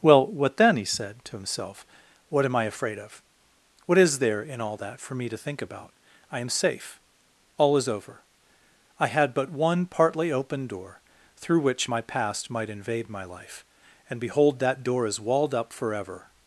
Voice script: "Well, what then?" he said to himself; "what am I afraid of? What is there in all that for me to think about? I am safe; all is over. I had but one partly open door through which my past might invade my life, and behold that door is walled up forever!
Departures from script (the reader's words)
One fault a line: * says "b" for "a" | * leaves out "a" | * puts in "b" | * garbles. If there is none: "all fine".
all fine